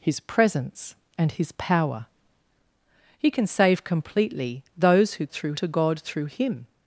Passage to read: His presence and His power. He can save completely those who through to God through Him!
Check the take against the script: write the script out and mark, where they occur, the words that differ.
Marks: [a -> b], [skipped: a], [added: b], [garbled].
His presence and His power. He can save completely those who through to God through Him!